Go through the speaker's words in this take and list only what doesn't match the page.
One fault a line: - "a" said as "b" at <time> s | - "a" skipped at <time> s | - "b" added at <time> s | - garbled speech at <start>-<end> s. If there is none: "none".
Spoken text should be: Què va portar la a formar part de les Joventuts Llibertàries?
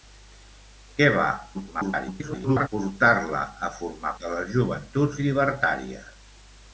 - garbled speech at 1.5-2.7 s
- "part" skipped at 4.1 s